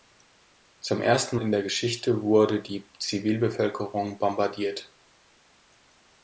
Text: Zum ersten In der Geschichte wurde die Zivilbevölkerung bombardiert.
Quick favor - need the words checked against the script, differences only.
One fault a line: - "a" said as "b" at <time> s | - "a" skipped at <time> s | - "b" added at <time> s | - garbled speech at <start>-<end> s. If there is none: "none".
none